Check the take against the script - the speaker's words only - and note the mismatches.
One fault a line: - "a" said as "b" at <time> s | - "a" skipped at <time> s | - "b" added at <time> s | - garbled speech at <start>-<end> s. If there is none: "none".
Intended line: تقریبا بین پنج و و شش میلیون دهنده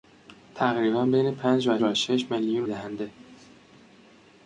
none